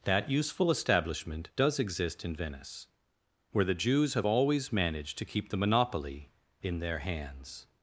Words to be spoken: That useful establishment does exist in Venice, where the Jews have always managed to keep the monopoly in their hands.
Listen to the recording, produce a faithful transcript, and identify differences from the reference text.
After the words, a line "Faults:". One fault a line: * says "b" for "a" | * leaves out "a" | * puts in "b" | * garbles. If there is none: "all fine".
That useful establishment does exist in Venice, where the Jews have always managed to keep the monopoly in their hands.
Faults:
all fine